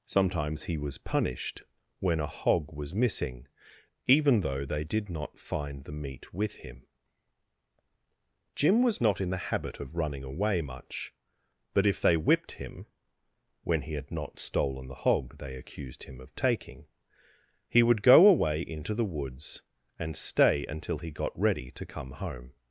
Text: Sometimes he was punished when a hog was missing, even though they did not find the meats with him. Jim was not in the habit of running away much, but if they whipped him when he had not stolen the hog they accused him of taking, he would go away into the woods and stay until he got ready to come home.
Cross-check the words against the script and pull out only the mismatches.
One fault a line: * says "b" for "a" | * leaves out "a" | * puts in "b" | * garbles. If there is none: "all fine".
* says "meat" for "meats"